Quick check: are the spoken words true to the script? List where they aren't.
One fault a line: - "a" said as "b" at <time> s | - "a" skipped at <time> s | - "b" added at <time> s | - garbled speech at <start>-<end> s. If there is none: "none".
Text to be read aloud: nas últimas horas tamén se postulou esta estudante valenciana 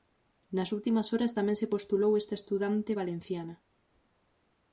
none